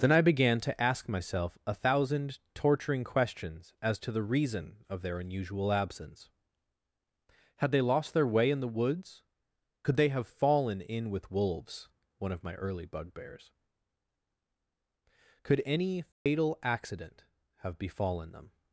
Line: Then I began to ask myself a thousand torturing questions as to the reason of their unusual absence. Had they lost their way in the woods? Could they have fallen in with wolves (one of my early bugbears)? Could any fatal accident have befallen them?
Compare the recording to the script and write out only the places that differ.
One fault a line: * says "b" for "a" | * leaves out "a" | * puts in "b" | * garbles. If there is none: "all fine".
all fine